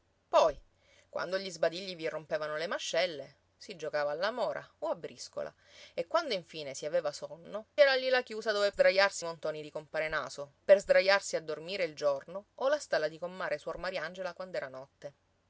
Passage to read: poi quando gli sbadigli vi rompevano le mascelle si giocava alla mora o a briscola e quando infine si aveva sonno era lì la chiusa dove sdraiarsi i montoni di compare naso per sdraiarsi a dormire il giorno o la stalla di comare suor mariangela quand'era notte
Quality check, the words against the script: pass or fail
pass